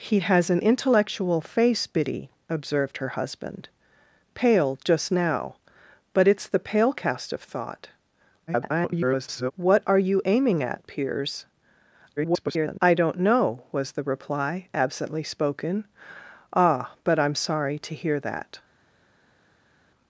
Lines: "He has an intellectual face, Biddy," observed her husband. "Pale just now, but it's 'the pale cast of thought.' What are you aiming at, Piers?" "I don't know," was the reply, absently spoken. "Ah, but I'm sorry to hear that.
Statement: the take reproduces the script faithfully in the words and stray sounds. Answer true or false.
false